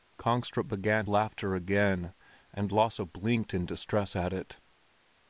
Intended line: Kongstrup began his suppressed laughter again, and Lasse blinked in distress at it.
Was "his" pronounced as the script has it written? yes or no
no